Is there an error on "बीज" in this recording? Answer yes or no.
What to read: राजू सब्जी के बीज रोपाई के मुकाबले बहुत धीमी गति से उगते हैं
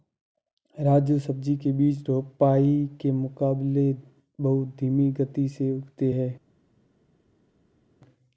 no